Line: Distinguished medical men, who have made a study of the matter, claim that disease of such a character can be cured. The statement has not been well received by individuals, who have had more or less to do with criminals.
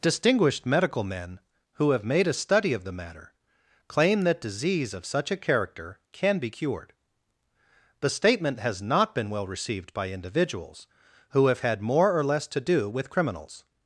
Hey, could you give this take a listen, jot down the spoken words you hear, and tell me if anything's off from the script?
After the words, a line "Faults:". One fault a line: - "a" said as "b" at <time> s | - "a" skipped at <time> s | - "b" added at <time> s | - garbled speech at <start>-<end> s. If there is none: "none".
Distinguished medical men, who have made a study of the matter, claim that disease of such a character can be cured. The statement has not been well received by individuals, who have had more or less to do with criminals.
Faults:
none